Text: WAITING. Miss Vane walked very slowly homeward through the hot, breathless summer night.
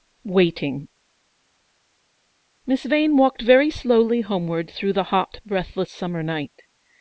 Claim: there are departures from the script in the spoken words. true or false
false